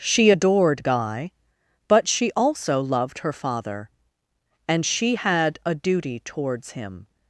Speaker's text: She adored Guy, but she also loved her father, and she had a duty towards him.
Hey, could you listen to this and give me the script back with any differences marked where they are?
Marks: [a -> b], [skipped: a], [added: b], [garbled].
She adored Guy, but she also loved her father, and she had a duty towards him.